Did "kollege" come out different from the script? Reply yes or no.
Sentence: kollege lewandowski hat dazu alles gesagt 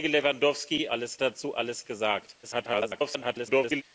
no